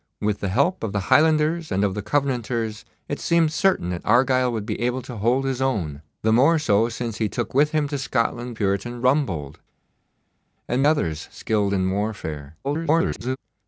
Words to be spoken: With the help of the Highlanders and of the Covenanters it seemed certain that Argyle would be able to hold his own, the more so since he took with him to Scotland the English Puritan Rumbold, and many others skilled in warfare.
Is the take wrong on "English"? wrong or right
wrong